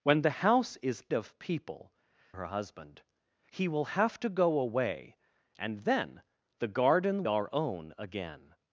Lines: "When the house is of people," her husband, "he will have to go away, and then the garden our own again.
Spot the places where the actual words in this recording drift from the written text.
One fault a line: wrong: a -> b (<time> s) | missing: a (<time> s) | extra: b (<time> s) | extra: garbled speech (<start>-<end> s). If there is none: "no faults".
no faults